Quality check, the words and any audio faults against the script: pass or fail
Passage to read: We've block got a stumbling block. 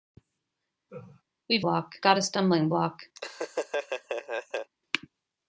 fail